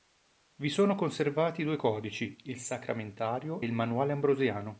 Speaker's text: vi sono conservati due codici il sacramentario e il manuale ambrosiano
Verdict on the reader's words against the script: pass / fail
fail